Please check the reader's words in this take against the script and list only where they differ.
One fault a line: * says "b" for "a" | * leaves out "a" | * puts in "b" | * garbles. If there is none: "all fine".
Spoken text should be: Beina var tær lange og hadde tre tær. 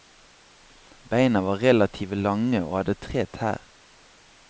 * says "relative" for "tær"